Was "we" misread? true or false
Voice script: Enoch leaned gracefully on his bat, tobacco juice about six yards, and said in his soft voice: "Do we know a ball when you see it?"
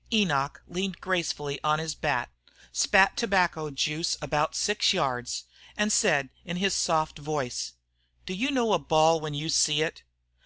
true